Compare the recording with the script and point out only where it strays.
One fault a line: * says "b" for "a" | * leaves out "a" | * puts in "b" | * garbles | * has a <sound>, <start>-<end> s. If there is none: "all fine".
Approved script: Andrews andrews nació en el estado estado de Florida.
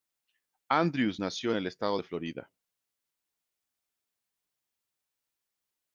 * leaves out "andrews"
* leaves out "estado"